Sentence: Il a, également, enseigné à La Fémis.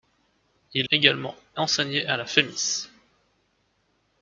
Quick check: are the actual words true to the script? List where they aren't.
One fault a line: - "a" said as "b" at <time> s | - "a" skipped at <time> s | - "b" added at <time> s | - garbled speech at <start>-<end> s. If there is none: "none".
- "a" skipped at 0.9 s